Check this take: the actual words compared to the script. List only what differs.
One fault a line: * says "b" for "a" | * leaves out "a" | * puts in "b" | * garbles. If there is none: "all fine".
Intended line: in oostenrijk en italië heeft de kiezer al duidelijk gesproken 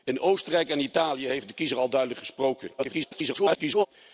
* garbles